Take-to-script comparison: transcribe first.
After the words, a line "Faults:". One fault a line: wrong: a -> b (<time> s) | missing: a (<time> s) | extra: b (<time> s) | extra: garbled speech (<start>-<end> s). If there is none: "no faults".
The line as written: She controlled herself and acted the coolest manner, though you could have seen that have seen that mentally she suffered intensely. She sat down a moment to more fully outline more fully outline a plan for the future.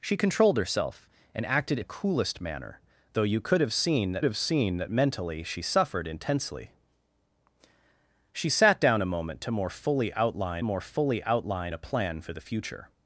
She controlled herself and acted the coolest manner, though you could have seen that have seen that mentally she suffered intensely. She sat down a moment to more fully outline more fully outline a plan for the future.
Faults:
no faults